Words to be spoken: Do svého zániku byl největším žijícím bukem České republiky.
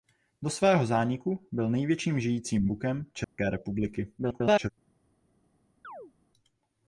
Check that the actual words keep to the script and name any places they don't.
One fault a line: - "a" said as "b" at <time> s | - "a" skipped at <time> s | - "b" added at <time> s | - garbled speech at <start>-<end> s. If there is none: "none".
- garbled speech at 4.2-4.7 s